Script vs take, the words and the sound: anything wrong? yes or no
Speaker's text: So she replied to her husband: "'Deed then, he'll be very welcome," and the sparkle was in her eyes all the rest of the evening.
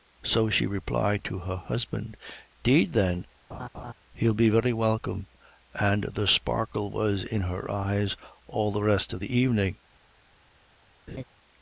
yes